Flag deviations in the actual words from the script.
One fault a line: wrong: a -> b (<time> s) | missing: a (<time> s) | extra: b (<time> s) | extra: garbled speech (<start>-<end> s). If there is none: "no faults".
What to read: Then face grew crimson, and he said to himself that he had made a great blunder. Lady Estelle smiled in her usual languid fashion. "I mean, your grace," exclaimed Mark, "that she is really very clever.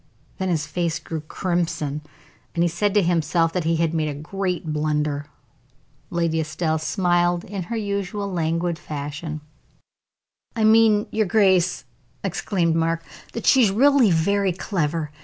extra: his (0.5 s)